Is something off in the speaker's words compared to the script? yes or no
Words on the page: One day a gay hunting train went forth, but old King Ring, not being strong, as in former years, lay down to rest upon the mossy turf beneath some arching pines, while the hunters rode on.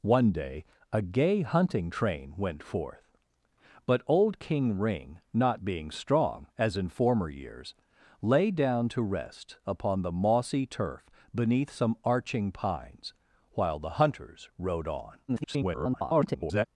yes